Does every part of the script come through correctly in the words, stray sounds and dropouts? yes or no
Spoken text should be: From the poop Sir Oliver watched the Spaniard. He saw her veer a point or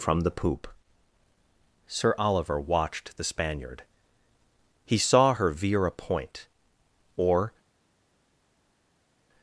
yes